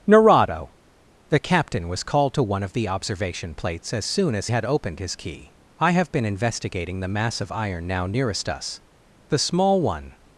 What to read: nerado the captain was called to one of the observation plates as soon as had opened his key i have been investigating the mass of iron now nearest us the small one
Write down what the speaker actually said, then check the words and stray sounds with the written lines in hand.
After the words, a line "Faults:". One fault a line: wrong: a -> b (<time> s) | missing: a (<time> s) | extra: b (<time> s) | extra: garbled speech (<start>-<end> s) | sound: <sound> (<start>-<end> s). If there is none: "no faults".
nerado the captain was called to one of the observation plates as soon as had opened his key i have been investigating the mass of iron now nearest us the small one
Faults:
no faults